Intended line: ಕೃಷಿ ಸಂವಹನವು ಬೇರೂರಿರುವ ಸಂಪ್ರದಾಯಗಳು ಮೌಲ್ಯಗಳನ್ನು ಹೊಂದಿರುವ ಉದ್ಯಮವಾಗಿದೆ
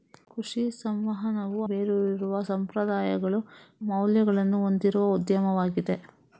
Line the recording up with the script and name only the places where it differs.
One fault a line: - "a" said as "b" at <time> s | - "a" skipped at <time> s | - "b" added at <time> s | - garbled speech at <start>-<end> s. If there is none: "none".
none